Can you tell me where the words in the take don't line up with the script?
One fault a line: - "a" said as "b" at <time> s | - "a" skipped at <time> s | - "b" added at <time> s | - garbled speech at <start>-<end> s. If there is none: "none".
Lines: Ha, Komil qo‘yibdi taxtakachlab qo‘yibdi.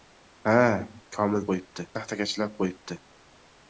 none